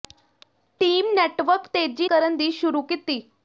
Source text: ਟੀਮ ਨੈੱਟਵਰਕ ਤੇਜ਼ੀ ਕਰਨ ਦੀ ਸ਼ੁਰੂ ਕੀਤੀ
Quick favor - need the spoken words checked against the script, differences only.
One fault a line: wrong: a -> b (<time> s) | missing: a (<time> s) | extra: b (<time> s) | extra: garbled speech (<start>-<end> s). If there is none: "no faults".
no faults